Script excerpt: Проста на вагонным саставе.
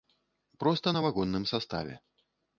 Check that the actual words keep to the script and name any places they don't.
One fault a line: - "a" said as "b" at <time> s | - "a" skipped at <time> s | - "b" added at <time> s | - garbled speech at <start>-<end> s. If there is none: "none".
none